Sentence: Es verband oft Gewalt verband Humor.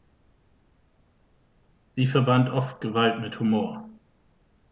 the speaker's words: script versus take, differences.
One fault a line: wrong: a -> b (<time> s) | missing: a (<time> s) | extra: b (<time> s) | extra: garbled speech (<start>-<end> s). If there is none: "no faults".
wrong: Es -> Sie (1.9 s)
wrong: verband -> mit (3.2 s)